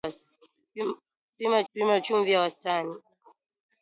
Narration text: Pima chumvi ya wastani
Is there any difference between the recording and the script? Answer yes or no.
yes